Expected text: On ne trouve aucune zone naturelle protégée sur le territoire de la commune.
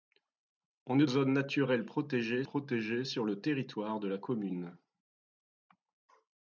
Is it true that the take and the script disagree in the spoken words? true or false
true